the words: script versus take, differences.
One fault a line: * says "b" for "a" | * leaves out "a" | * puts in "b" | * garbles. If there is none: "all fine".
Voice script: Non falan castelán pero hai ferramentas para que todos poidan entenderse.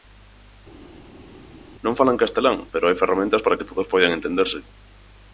all fine